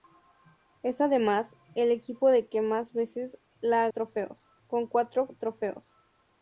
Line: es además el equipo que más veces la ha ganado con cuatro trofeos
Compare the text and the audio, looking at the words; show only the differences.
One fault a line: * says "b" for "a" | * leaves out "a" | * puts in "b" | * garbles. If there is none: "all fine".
* says "trofeos" for "ganado"